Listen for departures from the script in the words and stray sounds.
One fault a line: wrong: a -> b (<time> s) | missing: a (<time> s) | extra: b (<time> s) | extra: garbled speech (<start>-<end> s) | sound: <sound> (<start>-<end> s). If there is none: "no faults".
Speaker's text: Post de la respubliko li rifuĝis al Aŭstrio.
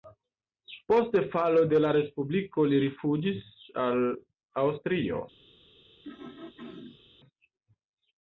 extra: falo (1.4 s)
sound: throat clearing (6.0-7.0 s)